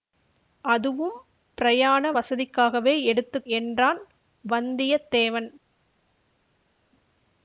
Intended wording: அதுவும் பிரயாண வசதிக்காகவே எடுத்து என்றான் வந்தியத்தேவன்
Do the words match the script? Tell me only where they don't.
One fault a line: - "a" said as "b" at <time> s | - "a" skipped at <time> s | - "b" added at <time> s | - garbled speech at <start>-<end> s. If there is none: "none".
none